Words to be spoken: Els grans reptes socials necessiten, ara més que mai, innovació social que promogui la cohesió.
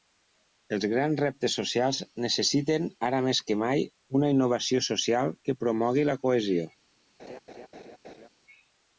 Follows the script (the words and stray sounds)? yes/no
no